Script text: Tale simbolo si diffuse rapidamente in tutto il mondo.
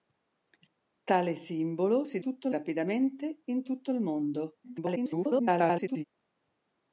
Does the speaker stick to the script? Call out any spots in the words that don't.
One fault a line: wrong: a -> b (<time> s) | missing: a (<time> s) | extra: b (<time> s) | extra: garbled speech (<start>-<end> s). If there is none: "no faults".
wrong: diffuse -> tutto (2.2 s)
extra: garbled speech (4.6-6.0 s)